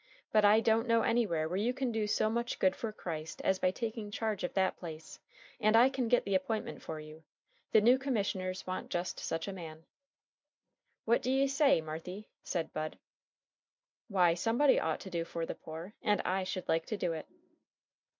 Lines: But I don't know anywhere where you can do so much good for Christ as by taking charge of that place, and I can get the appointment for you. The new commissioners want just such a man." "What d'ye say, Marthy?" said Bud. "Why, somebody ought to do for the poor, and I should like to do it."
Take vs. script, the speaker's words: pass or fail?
pass